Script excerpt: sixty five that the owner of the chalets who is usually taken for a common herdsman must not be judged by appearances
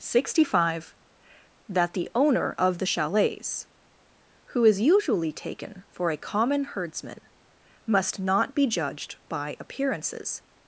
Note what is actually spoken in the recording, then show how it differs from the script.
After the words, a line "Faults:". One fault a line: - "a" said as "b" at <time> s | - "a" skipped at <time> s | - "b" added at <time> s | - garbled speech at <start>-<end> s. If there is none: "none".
sixty five that the owner of the chalets who is usually taken for a common herdsman must not be judged by appearances
Faults:
none